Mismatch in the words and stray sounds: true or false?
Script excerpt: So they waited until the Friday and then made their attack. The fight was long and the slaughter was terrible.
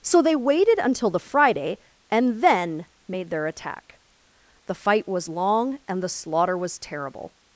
false